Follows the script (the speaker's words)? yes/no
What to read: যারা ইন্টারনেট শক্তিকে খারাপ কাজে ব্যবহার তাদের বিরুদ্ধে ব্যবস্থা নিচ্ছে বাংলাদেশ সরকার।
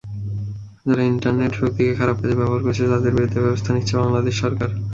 no